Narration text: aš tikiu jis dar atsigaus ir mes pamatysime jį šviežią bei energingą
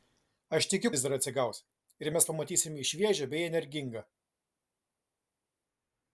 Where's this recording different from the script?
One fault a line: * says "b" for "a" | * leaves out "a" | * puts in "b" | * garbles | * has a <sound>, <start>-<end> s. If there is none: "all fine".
all fine